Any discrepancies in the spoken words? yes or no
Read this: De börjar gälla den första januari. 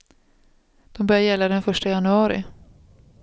no